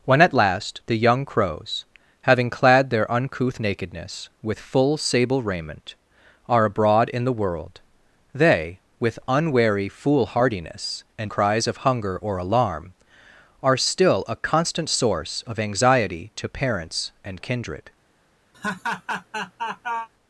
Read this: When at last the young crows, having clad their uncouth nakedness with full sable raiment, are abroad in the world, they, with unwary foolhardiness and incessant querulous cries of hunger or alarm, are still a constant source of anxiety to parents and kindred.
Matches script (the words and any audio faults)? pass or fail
fail